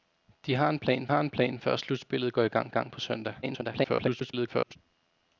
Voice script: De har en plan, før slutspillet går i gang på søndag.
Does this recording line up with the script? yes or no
no